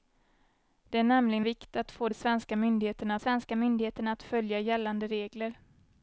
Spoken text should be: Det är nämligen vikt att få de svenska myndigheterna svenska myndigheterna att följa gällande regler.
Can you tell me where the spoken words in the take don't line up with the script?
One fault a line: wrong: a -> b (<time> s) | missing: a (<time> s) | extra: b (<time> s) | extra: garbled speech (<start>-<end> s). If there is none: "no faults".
no faults